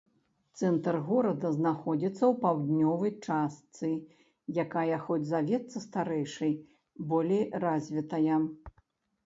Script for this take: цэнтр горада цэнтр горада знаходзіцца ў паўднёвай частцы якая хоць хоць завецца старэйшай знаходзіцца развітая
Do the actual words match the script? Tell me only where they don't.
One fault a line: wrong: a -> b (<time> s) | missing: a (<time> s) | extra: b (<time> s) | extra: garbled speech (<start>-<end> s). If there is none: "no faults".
missing: цэнтр горада (1.5 s)
missing: хоць (5.2 s)
wrong: знаходзіцца -> болей (7.1 s)